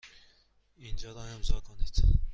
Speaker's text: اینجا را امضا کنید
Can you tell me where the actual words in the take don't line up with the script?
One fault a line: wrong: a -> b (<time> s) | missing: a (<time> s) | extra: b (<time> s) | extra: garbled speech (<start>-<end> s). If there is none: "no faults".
no faults